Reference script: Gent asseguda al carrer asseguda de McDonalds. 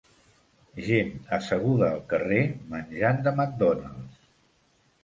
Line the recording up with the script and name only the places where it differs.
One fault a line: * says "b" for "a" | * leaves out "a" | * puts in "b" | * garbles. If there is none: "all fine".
* says "menjant" for "asseguda"